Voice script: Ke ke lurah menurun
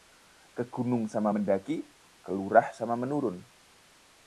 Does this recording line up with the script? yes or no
no